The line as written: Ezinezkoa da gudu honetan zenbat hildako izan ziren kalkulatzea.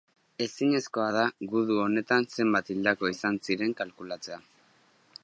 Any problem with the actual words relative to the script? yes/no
no